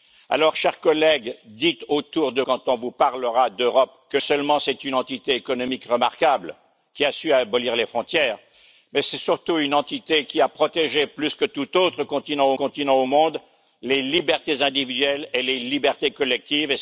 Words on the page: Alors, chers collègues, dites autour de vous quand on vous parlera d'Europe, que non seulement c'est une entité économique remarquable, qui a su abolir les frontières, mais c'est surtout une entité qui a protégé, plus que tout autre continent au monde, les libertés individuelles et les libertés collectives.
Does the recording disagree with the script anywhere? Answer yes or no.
yes